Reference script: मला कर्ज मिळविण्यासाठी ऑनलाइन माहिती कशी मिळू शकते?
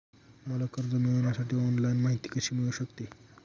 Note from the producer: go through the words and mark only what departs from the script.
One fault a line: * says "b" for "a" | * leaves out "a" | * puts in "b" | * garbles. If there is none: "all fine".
all fine